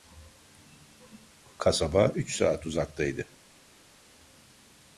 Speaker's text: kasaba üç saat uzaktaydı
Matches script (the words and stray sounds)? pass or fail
pass